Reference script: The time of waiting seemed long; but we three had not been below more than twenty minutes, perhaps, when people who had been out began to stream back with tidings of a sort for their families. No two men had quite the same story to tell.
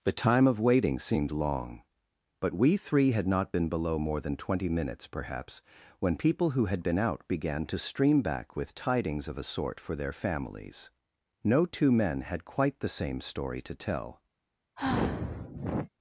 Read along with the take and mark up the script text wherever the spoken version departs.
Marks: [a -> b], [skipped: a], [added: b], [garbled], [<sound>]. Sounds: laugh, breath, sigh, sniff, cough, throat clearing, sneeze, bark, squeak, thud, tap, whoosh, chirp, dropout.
The time of waiting seemed long; but we three had not been below more than twenty minutes, perhaps, when people who had been out began to stream back with tidings of a sort for their families. No two men had quite the same story to tell. [sigh]